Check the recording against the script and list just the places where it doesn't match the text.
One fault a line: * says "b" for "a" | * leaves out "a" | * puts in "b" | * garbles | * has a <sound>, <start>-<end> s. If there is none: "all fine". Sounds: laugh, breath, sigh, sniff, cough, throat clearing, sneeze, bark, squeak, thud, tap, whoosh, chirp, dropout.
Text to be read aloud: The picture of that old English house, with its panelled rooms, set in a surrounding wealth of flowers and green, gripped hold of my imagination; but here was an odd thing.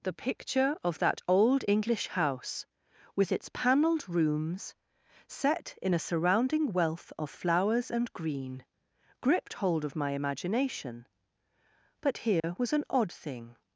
* has a dropout, 12.4-12.4 s